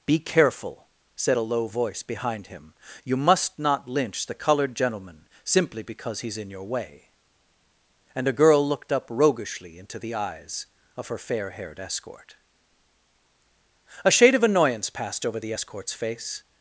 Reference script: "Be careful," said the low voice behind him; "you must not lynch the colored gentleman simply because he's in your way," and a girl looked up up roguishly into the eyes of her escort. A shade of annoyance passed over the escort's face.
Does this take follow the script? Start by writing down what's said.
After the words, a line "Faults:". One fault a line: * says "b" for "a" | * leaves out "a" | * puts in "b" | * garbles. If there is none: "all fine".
"Be careful," said a low voice behind him; "you must not lynch the colored gentleman simply because he's in your way," and a girl looked up roguishly into the eyes of her fair haired escort. A shade of annoyance passed over the escort's face.
Faults:
* says "a" for "the"
* leaves out "up"
* puts in "fair haired"